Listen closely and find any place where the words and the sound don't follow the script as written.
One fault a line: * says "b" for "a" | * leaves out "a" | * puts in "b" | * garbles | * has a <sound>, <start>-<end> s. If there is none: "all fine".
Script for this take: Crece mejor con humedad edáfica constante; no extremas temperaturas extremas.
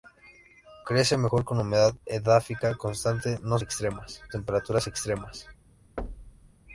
* has a thud, 6.0-6.5 s